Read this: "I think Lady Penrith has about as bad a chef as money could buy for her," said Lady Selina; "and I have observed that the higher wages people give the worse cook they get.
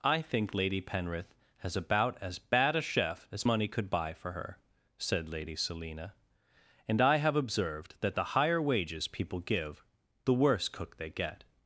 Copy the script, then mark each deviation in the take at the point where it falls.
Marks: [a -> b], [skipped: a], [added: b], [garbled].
"I think Lady Penrith has about as bad a chef as money could buy for her," said Lady Selina; "and I have observed that the higher wages people give the worse cook they get.